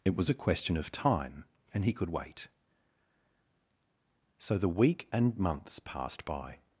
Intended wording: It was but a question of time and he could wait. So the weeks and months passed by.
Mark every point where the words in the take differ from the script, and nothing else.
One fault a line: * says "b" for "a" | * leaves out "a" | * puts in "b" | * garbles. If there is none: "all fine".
* leaves out "but"
* says "week" for "weeks"